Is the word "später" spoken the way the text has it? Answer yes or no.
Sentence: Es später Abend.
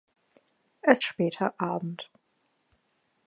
yes